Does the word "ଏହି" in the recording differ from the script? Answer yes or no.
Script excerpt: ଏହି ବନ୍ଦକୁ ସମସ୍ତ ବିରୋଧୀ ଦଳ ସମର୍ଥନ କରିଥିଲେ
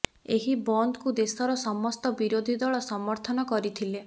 no